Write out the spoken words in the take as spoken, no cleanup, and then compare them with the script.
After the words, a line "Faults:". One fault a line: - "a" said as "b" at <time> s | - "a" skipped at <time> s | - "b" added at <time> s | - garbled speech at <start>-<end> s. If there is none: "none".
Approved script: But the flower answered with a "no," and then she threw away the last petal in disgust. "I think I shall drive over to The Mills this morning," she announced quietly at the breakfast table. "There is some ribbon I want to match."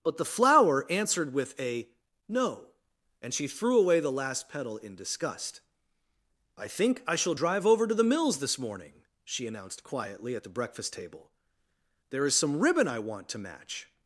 But the flower answered with a "no," and she threw away the last petal in disgust. "I think I shall drive over to The Mills this morning," she announced quietly at the breakfast table. "There is some ribbon I want to match."
Faults:
- "then" skipped at 3.4 s